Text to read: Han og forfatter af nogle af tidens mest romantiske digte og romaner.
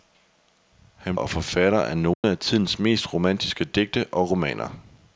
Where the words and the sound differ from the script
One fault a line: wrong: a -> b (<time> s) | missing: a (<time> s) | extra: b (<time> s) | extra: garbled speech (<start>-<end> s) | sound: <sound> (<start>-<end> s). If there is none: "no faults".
sound: dropout (2.1-2.2 s)